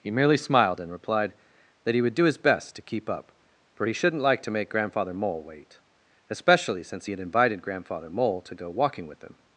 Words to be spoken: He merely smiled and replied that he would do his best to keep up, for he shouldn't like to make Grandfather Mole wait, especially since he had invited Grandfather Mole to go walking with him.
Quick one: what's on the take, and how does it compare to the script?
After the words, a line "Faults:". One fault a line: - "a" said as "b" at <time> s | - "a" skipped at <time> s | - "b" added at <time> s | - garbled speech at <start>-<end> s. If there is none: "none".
He merely smiled and replied that he would do his best to keep up, for he shouldn't like to make Grandfather Mole wait, especially since he had invited Grandfather Mole to go walking with him.
Faults:
none